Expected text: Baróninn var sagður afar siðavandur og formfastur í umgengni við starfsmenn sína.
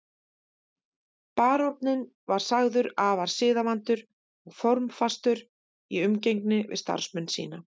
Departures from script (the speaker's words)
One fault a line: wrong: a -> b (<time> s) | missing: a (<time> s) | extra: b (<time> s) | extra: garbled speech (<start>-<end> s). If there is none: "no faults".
no faults